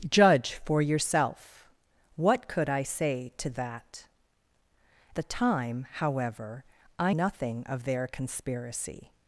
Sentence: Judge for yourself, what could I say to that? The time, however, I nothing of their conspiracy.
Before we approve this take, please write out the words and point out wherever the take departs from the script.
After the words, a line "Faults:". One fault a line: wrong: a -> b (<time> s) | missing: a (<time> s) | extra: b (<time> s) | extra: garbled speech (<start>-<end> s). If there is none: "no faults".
Judge for yourself, what could I say to that? The time, however, I nothing of their conspiracy.
Faults:
no faults